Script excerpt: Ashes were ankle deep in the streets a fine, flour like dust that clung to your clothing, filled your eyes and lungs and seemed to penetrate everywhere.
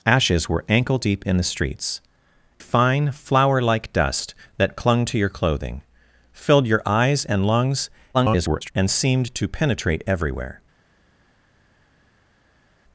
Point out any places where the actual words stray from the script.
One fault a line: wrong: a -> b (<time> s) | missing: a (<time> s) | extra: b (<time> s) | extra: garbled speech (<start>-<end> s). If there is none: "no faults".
missing: a (2.0 s)
extra: garbled speech (8.1-8.7 s)